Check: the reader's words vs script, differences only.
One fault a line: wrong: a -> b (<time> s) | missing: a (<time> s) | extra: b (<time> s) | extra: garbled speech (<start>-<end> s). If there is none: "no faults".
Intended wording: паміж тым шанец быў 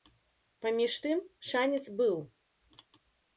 no faults